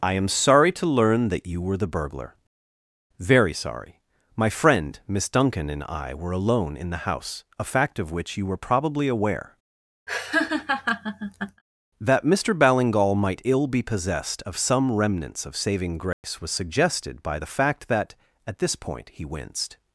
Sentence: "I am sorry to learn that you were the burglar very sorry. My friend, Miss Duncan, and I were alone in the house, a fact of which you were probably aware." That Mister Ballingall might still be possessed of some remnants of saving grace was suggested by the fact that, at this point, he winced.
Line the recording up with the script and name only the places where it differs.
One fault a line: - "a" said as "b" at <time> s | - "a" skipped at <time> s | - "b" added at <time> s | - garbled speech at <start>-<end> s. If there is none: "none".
- "still" said as "ill" at 13.4 s